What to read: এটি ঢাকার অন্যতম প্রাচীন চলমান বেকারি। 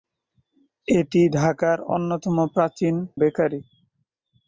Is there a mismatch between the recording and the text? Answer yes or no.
yes